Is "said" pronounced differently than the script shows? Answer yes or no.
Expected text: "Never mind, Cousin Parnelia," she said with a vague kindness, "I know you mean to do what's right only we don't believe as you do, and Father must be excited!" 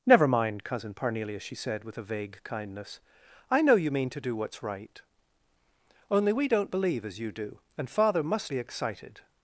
no